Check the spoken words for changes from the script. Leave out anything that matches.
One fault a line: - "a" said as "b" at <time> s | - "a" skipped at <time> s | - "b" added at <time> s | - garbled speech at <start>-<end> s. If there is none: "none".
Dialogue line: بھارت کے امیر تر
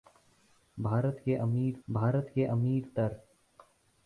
- "بھارت کے امیر" added at 1.9 s